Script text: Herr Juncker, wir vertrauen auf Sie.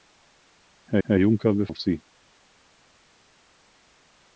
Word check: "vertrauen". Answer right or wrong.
wrong